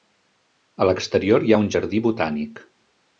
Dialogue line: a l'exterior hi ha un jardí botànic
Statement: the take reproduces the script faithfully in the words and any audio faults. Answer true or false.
true